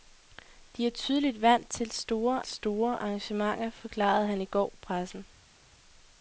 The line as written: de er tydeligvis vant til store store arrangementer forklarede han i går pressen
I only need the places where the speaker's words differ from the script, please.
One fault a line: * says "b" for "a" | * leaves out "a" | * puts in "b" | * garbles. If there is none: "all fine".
all fine